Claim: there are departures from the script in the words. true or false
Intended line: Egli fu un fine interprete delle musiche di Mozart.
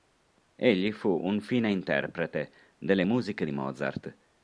false